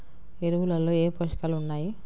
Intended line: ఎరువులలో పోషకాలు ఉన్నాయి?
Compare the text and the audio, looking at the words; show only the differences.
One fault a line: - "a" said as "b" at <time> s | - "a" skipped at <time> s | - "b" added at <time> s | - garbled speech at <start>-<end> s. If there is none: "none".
- "ఏ" added at 0.9 s